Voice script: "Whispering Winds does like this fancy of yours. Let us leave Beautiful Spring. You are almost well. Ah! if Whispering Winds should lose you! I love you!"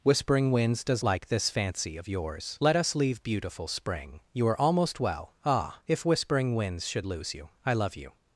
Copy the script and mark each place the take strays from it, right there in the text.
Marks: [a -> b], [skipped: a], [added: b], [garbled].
"Whispering Winds does like this fancy of yours. Let us leave Beautiful Spring. You are almost well. Ah! if Whispering Winds should lose you! I love you!"